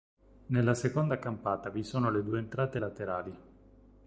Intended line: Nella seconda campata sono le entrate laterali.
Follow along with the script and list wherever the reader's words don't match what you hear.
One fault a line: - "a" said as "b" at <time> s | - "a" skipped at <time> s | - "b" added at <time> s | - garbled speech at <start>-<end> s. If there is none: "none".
- "vi" added at 1.7 s
- "due" added at 2.2 s